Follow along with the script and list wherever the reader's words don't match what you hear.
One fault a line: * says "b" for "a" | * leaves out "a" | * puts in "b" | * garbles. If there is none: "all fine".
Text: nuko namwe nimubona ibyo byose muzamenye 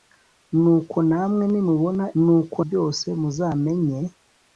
* says "nuko" for "ibyo"